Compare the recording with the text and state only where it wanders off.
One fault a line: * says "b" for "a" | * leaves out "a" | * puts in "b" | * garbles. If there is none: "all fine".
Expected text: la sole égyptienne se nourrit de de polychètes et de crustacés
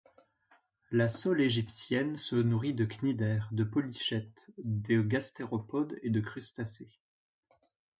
* puts in "cnidaires"
* puts in "de gastéropodes"